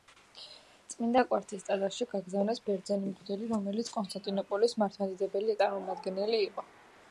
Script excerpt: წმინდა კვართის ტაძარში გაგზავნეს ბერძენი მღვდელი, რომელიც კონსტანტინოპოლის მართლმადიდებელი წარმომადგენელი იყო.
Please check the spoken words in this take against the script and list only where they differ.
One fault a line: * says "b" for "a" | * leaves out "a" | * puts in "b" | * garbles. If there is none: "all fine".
all fine